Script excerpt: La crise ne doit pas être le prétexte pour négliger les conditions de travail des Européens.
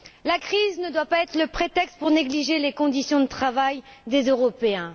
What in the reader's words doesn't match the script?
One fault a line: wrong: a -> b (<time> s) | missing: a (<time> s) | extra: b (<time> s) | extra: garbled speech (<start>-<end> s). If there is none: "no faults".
no faults